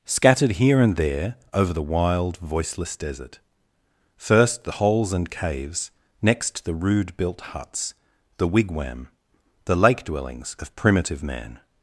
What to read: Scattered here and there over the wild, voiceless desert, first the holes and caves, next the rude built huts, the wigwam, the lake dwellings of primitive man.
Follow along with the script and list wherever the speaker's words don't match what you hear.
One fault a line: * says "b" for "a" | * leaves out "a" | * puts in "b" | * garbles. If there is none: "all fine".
all fine